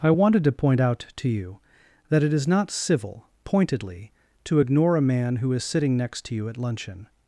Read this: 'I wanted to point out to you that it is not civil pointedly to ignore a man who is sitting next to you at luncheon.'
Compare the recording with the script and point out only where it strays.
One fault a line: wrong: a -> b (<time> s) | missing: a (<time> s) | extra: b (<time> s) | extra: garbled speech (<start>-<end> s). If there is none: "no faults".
no faults